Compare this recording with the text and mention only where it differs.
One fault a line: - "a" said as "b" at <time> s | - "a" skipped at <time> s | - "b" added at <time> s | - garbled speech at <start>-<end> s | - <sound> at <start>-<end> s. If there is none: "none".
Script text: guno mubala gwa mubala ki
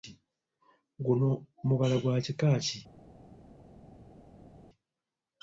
- "mubala" said as "kika" at 2.2 s